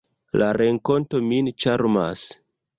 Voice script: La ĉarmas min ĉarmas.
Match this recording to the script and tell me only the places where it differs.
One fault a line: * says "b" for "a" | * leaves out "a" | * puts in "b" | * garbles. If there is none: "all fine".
* says "renkonto" for "ĉarmas"